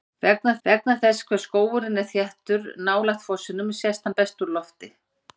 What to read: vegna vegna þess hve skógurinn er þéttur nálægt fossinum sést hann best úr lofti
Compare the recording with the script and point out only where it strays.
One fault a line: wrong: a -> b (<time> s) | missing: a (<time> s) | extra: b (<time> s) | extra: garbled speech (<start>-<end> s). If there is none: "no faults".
no faults